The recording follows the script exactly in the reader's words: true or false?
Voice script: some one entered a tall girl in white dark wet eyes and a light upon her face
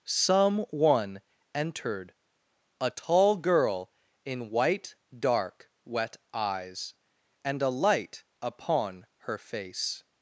true